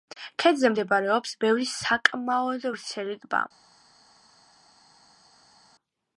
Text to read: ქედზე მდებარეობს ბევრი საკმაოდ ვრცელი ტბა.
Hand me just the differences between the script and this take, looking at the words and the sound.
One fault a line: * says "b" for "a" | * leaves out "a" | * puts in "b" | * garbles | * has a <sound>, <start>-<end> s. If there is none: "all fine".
all fine